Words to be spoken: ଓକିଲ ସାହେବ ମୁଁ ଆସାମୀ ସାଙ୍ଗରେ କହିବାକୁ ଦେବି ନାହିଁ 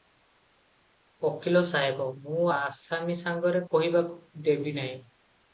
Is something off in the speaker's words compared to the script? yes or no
no